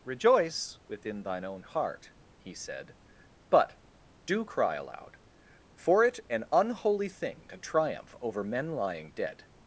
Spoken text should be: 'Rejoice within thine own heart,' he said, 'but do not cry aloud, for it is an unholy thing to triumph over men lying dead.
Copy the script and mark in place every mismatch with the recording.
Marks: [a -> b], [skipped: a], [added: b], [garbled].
'Rejoice within thine own heart,' he said, 'but do [skipped: not] cry aloud, for it [skipped: is] an unholy thing to triumph over men lying dead.